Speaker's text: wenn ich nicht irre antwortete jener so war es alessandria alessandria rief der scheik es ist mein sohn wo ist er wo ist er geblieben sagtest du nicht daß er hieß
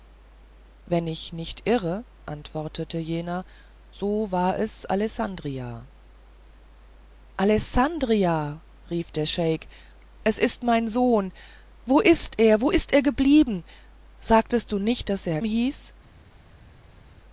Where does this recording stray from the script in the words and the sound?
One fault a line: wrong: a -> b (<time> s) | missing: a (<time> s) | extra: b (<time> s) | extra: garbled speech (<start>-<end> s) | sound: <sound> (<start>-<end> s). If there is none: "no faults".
no faults